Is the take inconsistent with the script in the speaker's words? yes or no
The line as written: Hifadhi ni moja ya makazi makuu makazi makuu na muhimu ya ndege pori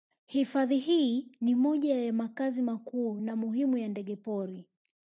yes